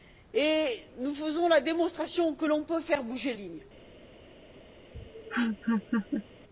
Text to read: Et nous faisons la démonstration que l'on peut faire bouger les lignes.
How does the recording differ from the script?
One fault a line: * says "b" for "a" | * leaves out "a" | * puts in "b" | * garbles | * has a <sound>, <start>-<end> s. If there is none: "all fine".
* leaves out "les"
* has a laugh, 4.9-6.2 s